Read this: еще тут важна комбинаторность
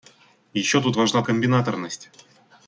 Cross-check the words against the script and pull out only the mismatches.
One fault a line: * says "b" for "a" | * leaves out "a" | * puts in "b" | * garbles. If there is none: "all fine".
all fine